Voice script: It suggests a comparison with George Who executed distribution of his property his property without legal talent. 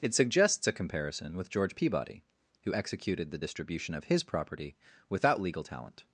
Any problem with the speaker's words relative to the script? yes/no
yes